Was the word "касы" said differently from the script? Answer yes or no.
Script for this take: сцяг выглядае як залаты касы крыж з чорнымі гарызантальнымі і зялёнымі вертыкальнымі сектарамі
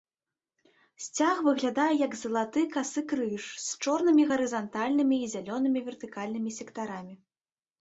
no